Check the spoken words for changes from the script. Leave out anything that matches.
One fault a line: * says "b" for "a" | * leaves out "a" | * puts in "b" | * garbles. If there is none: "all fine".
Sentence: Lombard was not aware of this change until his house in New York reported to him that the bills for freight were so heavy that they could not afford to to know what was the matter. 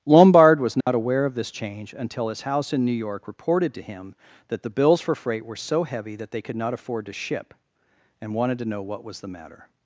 * puts in "ship and wanted"